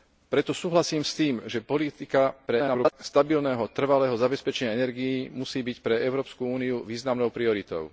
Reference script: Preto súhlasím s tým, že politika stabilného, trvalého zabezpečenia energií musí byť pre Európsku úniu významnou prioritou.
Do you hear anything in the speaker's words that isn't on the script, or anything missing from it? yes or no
yes